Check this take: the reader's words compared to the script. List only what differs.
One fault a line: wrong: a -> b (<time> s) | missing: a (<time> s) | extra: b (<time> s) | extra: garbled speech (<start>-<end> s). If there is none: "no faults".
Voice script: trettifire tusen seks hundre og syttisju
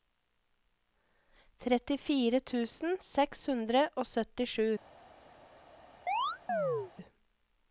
no faults